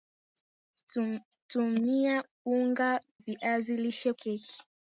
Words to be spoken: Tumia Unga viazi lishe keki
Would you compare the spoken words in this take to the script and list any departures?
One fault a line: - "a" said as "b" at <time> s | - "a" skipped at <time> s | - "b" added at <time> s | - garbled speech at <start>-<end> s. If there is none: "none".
none